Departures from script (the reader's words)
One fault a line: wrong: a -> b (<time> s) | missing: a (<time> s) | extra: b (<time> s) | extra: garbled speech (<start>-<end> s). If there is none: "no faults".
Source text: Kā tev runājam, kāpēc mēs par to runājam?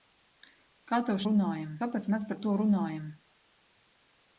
no faults